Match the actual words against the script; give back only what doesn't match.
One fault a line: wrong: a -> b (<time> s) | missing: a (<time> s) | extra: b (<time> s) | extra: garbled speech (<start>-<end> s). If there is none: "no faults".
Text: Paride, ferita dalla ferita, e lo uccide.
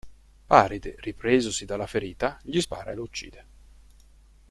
wrong: ferita -> ripresosi (1.0 s)
extra: gli spara (2.4 s)